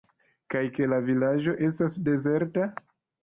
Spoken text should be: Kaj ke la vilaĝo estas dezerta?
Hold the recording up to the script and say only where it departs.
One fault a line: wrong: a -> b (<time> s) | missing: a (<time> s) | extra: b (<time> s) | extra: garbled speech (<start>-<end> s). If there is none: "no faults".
no faults